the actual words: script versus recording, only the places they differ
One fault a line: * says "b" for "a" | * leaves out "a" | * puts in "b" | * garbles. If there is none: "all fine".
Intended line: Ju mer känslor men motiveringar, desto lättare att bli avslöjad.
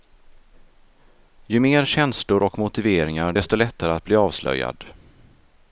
* says "och" for "men"